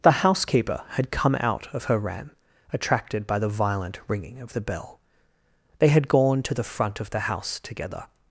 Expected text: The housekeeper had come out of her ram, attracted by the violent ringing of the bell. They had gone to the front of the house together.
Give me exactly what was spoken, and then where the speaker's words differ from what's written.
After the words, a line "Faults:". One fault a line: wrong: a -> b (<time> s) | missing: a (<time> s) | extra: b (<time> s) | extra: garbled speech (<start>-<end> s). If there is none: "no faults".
The housekeeper had come out of her ram, attracted by the violent ringing of the bell. They had gone to the front of the house together.
Faults:
no faults